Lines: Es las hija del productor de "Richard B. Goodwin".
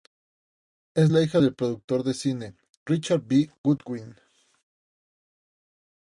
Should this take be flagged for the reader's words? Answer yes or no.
yes